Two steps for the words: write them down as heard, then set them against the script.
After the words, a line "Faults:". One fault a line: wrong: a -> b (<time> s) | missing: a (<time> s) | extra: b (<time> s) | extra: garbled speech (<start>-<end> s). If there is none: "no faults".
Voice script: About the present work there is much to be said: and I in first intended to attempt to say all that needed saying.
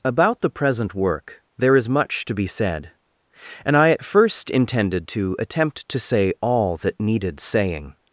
About the present work there is much to be said: and I at first intended to attempt to say all that needed saying.
Faults:
wrong: in -> at (3.9 s)